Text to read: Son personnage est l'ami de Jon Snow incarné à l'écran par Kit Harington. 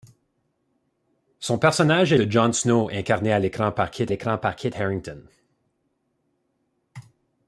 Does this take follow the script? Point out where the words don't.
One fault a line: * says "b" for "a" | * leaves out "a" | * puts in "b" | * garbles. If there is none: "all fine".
* leaves out "l'ami"
* puts in "l'écran par Kit"